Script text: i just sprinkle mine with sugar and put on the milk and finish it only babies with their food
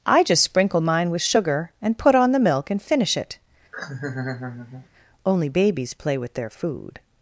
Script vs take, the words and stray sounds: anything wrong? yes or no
yes